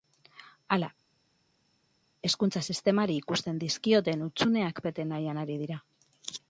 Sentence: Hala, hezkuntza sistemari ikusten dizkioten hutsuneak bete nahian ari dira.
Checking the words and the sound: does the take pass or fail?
pass